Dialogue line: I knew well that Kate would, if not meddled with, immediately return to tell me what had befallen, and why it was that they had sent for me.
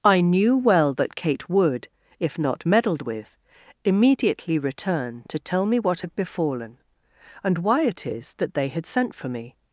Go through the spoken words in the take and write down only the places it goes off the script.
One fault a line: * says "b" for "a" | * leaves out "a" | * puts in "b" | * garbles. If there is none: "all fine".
* says "is" for "was"